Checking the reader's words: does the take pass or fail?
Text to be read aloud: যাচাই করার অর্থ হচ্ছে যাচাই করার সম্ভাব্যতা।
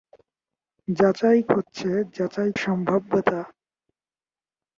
fail